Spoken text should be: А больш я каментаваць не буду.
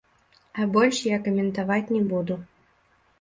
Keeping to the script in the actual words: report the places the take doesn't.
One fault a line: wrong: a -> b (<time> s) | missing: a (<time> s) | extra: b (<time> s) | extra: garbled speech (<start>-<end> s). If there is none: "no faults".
no faults